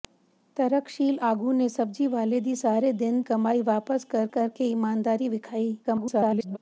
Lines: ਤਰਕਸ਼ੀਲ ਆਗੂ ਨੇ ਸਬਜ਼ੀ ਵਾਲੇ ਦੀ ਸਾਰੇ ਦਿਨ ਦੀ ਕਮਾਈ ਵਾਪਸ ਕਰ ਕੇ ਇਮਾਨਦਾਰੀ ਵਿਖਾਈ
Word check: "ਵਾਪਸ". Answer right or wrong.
right